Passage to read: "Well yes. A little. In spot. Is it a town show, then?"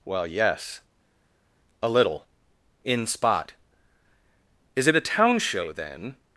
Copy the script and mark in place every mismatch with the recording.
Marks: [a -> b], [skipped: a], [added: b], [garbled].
"Well yes. A little. In spot. Is it a town show, then?"